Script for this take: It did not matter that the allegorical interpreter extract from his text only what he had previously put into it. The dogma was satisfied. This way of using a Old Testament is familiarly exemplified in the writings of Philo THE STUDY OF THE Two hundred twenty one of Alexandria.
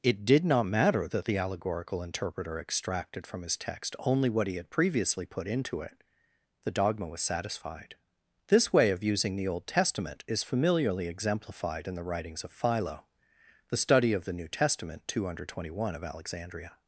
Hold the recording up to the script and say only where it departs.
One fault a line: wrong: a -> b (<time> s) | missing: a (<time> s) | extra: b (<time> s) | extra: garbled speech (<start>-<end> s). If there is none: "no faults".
wrong: extract -> extracted (2.6 s)
wrong: a -> the (9.3 s)
extra: NEW TESTAMENT (14.3 s)